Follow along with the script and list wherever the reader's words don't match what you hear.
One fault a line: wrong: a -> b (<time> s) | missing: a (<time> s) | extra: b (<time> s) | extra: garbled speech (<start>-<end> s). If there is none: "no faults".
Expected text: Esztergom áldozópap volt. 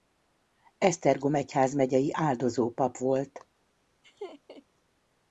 extra: egyházmegyei (1.4 s)